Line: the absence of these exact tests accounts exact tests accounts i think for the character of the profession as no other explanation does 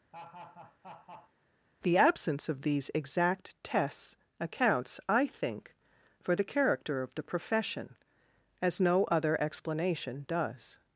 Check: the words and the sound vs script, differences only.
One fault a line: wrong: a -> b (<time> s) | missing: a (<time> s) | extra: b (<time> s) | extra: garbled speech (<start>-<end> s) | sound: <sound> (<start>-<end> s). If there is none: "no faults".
sound: laugh (0.1-1.3 s)
missing: exact tests accounts (5.0 s)